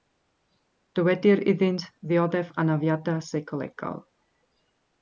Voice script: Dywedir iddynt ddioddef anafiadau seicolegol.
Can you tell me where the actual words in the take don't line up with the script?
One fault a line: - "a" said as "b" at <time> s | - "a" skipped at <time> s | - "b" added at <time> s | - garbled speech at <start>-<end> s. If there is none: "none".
none